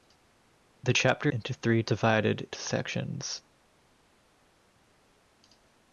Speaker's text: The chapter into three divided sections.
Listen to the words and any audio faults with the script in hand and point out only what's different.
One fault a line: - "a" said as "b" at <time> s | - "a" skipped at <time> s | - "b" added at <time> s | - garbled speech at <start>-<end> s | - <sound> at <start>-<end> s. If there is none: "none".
none